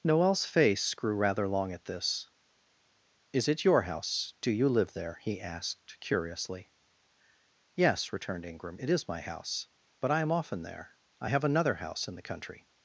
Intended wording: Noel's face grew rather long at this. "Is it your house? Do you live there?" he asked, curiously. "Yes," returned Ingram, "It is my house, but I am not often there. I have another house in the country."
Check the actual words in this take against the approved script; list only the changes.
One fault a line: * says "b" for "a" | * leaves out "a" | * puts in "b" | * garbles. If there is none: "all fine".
* leaves out "not"